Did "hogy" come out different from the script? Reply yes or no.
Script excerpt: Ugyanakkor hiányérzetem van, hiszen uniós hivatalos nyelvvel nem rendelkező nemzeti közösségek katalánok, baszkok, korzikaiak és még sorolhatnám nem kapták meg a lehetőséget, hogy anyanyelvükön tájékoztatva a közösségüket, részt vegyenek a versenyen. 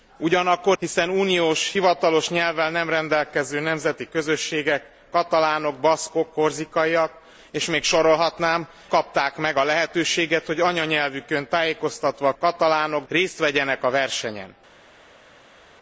no